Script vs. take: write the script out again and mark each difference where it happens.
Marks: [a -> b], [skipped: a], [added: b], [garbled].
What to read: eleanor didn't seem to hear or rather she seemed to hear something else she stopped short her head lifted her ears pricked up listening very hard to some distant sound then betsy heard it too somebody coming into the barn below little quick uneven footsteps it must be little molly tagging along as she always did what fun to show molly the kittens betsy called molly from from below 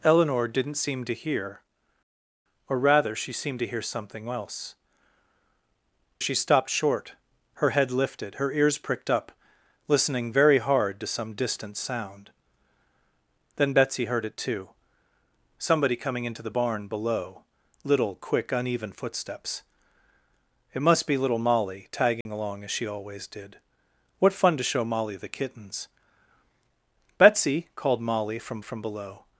eleanor didn't seem to hear or rather she seemed to hear something else she stopped short her head lifted her ears pricked up listening very hard to some distant sound then betsy heard it too somebody coming into the barn below little quick uneven footsteps it must be little molly tagging along as she always did what fun to show molly the kittens betsy called molly from from below